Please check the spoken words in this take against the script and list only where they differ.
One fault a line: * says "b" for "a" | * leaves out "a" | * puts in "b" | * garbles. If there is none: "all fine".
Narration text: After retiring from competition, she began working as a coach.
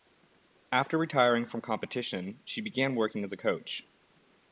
all fine